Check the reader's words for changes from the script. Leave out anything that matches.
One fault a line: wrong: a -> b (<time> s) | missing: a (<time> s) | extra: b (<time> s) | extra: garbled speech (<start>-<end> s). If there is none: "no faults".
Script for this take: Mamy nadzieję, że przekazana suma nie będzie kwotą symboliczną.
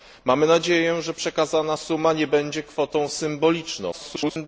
extra: garbled speech (3.9-4.5 s)